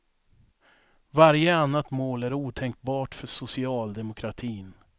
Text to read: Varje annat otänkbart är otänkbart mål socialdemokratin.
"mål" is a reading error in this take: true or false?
true